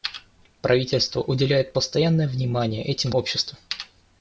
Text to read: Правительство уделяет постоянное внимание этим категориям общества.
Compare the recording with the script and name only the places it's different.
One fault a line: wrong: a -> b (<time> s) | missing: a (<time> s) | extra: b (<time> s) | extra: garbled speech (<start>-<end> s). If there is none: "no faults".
missing: категориям (3.1 s)